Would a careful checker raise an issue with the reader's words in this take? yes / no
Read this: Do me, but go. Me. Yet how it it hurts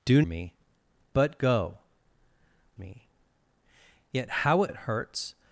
no